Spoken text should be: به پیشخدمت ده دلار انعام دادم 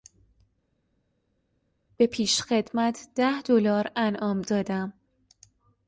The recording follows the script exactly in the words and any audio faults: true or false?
true